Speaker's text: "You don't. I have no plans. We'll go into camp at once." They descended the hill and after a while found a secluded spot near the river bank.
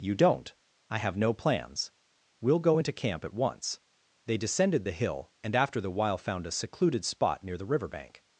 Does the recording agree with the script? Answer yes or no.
no